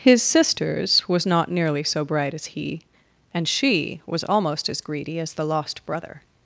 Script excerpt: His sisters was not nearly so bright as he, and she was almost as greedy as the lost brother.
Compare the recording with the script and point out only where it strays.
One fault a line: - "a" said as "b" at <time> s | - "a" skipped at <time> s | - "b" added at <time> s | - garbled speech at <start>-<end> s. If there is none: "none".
none